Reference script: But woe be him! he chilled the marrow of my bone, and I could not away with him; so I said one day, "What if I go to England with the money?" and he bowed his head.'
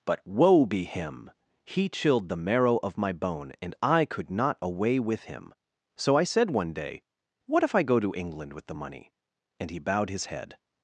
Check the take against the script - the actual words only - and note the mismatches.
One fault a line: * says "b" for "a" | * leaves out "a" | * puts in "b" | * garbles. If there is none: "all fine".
all fine